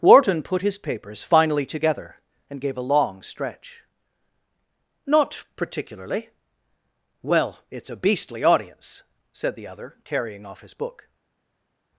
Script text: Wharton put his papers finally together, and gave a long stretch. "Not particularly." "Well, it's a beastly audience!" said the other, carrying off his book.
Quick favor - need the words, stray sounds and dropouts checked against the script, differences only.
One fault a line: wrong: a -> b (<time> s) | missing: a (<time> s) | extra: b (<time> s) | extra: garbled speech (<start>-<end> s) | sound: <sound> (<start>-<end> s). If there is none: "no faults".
no faults